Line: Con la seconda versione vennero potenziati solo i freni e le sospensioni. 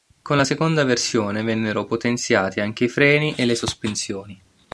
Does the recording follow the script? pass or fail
fail